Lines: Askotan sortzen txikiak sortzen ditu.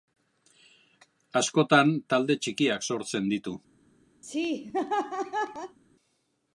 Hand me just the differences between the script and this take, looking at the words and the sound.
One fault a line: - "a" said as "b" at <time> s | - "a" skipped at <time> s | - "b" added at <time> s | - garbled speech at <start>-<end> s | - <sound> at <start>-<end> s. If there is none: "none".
- "sortzen" said as "talde" at 2.1 s
- laugh at 4.2-5.8 s